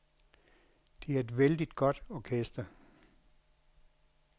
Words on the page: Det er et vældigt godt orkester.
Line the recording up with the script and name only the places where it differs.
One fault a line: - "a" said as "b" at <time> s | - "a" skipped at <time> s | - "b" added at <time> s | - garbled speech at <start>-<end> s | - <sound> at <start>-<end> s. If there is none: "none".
none